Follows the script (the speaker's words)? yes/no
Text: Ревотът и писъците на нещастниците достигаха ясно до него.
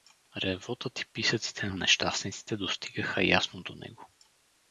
yes